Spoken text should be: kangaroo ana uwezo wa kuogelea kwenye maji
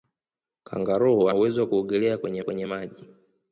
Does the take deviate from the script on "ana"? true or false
true